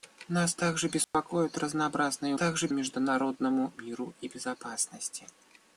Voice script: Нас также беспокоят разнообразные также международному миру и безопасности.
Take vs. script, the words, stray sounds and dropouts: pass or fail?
fail